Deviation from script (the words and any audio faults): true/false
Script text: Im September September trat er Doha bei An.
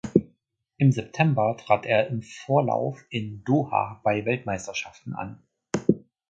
true